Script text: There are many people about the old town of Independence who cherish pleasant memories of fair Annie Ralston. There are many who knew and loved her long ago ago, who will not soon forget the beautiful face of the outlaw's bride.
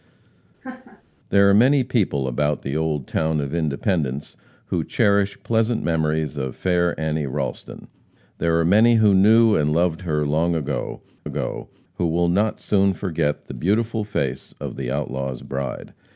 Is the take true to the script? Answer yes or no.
yes